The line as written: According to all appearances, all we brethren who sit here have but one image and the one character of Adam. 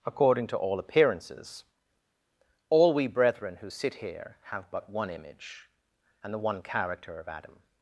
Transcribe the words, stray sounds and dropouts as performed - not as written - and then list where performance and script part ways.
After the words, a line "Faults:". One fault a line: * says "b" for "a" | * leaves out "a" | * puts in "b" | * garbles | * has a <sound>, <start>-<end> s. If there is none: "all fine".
According to all appearances, all we brethren who sit here have but one image and the one character of Adam.
Faults:
all fine